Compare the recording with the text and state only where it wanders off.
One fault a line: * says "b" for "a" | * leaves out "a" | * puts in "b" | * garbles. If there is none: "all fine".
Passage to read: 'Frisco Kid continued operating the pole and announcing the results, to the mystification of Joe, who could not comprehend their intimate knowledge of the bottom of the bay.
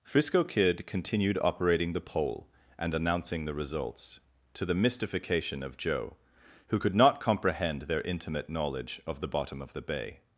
all fine